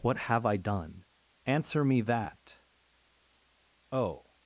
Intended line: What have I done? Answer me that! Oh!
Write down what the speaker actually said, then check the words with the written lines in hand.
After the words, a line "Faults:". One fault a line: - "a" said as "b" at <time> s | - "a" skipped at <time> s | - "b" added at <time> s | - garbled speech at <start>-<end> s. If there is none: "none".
What have I done? Answer me that! Oh!
Faults:
none